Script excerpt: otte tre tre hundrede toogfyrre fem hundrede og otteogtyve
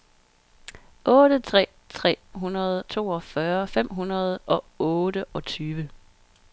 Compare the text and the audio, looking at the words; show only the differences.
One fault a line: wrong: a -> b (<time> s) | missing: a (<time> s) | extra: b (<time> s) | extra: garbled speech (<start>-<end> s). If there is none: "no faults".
no faults